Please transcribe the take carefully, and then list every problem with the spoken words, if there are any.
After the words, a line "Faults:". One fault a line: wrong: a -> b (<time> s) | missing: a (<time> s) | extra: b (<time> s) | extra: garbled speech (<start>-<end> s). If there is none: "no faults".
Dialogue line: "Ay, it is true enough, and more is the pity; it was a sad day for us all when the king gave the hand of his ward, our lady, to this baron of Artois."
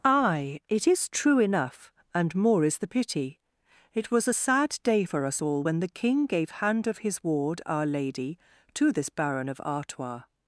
"Ay, it is true enough, and more is the pity; it was a sad day for us all when the king gave hand of his ward, our lady, to this baron of Artois."
Faults:
missing: the (6.5 s)